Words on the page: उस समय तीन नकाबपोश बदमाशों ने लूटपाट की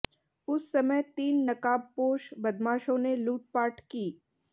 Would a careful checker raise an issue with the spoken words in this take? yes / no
no